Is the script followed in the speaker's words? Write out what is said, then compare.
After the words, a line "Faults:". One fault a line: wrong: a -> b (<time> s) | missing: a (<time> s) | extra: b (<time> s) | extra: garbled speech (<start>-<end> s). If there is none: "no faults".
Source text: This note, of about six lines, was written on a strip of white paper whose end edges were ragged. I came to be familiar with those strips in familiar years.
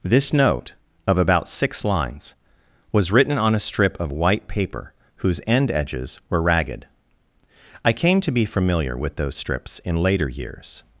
This note, of about six lines, was written on a strip of white paper whose end edges were ragged. I came to be familiar with those strips in later years.
Faults:
wrong: familiar -> later (10.0 s)